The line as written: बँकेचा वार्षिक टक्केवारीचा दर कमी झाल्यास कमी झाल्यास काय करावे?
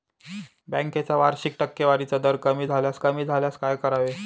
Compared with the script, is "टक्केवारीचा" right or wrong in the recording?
right